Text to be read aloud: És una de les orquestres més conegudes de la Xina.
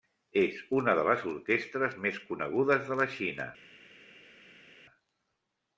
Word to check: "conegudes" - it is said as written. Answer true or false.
true